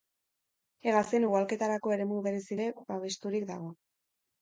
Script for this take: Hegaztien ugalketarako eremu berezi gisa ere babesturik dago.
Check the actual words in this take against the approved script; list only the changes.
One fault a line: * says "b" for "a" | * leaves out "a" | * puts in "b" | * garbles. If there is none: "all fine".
* leaves out "gisa"